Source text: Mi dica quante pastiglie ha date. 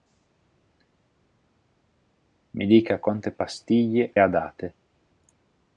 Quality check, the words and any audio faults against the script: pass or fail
pass